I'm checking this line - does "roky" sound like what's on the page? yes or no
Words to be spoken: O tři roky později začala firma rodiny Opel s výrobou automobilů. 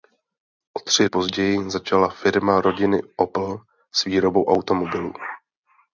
no